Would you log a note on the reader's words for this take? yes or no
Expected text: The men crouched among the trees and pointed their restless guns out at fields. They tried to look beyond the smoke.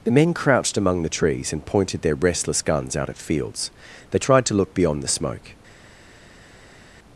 no